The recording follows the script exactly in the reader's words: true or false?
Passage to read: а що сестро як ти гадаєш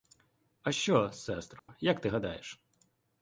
true